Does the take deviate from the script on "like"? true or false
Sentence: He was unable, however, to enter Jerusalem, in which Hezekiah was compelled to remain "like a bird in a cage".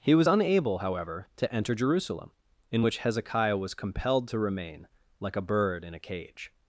false